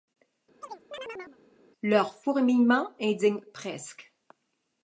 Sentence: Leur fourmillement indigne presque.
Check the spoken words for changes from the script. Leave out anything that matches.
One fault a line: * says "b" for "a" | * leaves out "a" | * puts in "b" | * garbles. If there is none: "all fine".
all fine